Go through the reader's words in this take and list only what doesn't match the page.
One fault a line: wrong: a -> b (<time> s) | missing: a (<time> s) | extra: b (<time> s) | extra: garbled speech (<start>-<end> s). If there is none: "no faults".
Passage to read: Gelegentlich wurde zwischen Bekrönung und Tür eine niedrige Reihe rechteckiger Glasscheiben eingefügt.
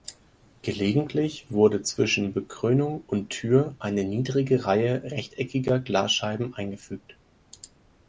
no faults